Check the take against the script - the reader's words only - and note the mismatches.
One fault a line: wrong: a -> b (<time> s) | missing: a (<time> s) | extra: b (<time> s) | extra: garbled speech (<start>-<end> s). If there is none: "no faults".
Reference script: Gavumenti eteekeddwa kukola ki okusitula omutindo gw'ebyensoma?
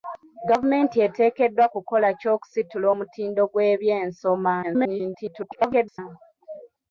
extra: garbled speech (4.6-6.0 s)